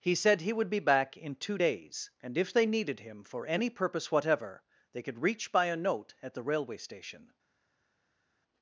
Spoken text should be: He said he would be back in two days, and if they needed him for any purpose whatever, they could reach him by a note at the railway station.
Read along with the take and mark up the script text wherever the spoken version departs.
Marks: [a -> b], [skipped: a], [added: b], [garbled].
He said he would be back in two days, and if they needed him for any purpose whatever, they could reach [skipped: him] by a note at the railway station.